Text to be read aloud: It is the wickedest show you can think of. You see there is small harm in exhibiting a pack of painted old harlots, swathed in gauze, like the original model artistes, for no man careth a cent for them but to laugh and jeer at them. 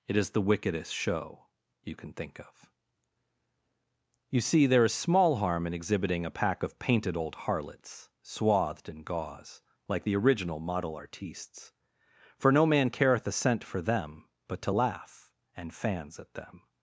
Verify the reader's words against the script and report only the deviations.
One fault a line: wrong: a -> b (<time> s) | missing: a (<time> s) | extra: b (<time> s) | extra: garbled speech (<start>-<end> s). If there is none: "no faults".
wrong: jeer -> fans (15.7 s)